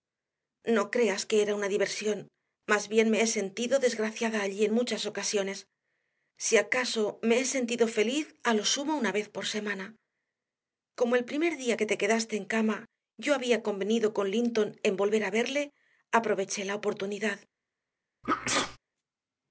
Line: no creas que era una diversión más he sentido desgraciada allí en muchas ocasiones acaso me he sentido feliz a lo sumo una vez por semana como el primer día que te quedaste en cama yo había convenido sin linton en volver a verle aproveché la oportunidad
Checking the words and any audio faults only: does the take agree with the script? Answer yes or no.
no